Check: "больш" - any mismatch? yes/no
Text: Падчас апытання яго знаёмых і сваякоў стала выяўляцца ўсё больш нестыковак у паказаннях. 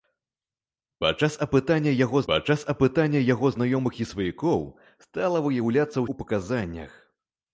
yes